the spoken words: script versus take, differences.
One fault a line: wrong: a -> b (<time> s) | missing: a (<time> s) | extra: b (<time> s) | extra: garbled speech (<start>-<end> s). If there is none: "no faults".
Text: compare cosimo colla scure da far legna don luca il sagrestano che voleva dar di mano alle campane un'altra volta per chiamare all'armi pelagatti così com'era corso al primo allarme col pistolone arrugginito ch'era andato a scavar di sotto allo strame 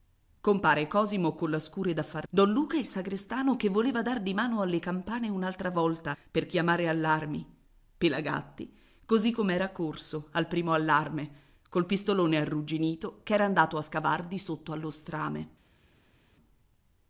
missing: legna (2.3 s)